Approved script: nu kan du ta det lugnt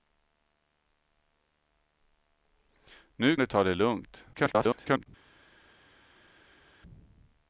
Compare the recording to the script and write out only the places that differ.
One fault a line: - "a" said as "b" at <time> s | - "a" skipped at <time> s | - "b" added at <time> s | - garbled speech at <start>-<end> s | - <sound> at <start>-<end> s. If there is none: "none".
- "kan" skipped at 3.4 s
- garbled speech at 4.3-5.1 s